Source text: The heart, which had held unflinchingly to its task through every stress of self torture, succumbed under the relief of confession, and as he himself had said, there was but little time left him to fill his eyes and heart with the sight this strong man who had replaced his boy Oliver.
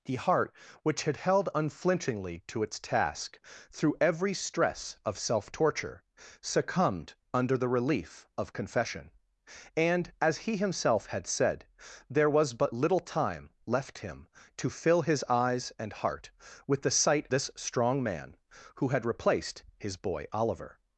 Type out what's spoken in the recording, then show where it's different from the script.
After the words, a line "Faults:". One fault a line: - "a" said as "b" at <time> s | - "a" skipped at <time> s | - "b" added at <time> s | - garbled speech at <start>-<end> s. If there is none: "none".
The heart, which had held unflinchingly to its task through every stress of self torture, succumbed under the relief of confession, and as he himself had said, there was but little time left him to fill his eyes and heart with the sight this strong man who had replaced his boy Oliver.
Faults:
none